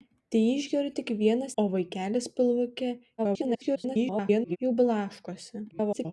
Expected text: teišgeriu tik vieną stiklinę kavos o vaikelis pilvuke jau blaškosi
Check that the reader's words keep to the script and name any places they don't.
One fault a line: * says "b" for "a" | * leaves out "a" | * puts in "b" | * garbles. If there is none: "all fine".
* leaves out "stiklinę kavos"
* garbles
* garbles